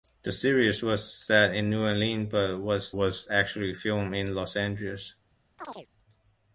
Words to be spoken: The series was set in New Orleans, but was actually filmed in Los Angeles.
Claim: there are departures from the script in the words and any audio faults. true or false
true